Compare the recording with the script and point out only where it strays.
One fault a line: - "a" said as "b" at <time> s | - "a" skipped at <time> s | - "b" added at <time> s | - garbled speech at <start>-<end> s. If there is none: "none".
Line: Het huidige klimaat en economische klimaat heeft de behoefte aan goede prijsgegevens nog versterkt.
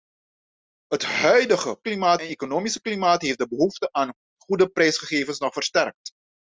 none